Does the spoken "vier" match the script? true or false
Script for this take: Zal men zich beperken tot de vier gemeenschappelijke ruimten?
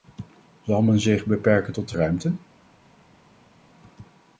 false